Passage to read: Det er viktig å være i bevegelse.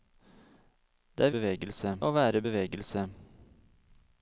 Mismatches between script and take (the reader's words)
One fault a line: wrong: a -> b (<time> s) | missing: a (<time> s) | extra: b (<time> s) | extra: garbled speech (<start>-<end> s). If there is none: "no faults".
wrong: viktig -> bevegelse (1.3 s)